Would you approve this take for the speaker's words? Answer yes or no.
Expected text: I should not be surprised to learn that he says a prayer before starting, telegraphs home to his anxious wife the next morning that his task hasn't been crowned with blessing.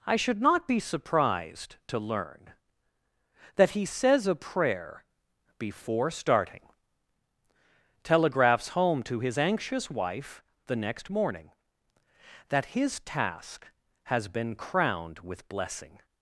no